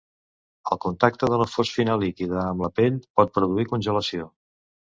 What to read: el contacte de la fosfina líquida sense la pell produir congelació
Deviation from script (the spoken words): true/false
true